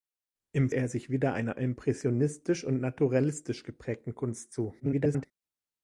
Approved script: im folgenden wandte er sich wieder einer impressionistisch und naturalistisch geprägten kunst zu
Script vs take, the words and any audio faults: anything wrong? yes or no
yes